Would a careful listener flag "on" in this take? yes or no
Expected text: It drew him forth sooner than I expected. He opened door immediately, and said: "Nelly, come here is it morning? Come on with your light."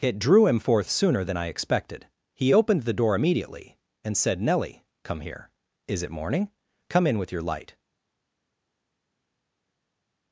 yes